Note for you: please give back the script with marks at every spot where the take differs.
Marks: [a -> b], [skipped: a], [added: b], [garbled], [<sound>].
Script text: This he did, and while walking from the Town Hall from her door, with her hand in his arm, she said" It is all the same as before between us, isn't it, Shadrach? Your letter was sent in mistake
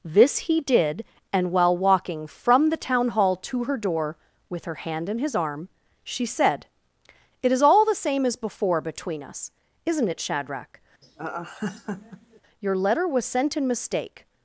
This he did, and while walking from the Town Hall [from -> to] her door, with her hand in his arm, she said" It is all the same as before between us, isn't it, Shadrach? [laugh] Your letter was sent in mistake